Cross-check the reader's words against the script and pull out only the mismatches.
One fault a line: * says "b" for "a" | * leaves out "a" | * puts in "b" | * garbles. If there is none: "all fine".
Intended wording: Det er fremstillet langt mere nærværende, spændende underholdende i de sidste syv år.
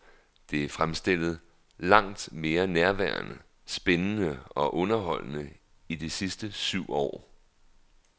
* puts in "og"